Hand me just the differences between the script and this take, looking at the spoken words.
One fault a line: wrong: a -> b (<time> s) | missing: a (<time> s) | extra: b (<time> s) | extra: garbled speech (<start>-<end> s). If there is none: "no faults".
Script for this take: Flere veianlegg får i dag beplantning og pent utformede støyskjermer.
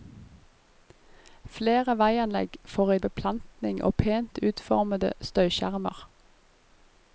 missing: dag (3.0 s)